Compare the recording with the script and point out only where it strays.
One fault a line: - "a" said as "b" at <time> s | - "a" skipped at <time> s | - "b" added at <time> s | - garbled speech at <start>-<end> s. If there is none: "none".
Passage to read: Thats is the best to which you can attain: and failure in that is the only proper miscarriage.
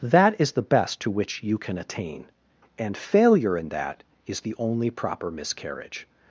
- "Thats" said as "That" at 0.0 s